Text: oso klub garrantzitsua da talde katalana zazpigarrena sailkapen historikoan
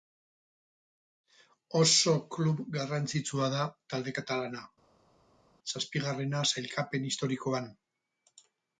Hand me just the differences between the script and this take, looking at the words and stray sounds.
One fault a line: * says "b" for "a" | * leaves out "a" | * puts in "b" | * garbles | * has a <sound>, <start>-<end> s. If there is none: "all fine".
all fine